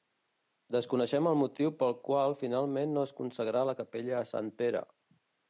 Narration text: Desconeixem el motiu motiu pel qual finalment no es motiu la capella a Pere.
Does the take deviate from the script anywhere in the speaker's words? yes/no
yes